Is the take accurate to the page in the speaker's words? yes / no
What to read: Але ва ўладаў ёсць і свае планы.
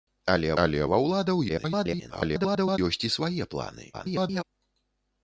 no